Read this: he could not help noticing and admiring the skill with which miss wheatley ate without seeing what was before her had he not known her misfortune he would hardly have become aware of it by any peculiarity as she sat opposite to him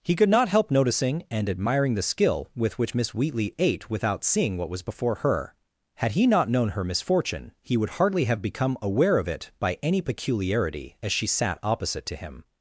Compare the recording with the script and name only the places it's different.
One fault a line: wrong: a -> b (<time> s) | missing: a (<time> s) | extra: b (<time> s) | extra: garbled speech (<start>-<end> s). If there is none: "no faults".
no faults